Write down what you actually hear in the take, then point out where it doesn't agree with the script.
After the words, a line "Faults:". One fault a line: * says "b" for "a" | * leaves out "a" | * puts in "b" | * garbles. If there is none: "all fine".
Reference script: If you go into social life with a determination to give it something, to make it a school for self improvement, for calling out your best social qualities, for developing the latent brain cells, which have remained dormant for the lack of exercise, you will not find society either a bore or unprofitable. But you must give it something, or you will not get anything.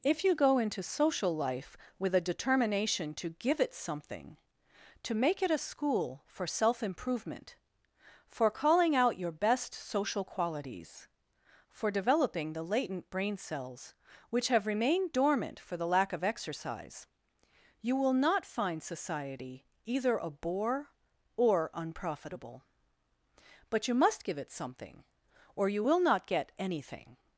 If you go into social life with a determination to give it something, to make it a school for self improvement, for calling out your best social qualities, for developing the latent brain cells, which have remained dormant for the lack of exercise, you will not find society either a bore or unprofitable. But you must give it something, or you will not get anything.
Faults:
all fine